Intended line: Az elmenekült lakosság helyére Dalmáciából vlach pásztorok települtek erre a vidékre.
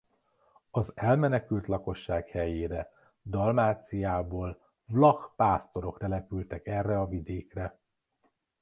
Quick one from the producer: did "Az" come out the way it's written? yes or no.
yes